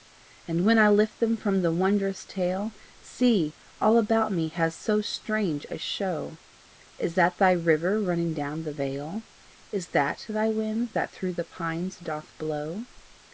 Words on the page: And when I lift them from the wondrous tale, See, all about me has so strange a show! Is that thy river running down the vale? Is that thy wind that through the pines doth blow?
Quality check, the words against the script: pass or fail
pass